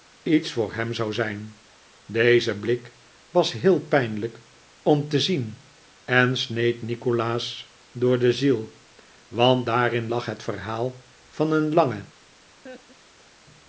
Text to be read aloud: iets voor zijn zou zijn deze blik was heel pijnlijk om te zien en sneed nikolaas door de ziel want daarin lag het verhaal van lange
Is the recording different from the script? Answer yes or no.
yes